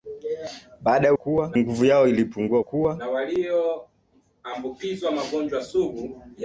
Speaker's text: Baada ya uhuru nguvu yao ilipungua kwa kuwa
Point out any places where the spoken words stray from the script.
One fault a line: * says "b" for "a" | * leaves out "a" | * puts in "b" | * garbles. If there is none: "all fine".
* says "kuwa" for "uhuru"
* leaves out "kwa"